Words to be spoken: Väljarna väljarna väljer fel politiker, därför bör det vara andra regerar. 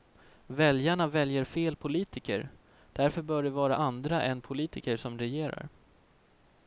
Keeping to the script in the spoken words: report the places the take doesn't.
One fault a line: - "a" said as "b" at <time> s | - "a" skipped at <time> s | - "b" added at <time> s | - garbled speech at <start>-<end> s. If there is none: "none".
- "väljarna" skipped at 1.1 s
- "än politiker som" added at 4.2 s